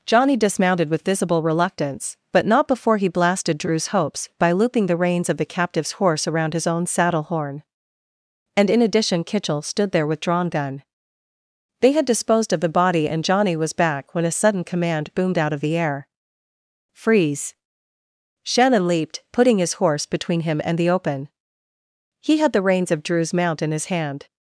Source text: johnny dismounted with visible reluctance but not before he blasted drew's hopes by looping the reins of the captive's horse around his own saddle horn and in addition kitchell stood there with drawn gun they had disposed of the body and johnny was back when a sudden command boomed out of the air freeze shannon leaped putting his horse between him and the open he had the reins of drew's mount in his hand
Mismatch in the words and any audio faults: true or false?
false